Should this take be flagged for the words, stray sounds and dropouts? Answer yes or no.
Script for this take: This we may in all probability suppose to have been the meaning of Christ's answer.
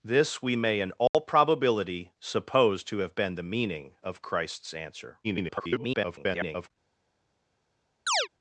yes